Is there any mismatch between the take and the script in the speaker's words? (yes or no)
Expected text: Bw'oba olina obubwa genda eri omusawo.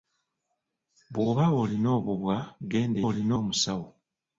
yes